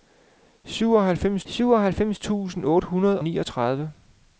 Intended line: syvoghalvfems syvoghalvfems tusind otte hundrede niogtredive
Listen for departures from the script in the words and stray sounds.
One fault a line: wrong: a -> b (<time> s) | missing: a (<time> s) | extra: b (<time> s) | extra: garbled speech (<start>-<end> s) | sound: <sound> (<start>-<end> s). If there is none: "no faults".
no faults